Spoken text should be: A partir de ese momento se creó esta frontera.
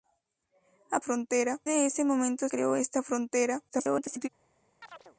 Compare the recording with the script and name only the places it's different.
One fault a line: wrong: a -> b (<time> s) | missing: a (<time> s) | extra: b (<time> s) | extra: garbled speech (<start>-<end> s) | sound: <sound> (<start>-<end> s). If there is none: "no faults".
wrong: partir -> frontera (1.0 s)
missing: se (2.5 s)
extra: garbled speech (3.7-4.3 s)
sound: chirp (4.8-5.2 s)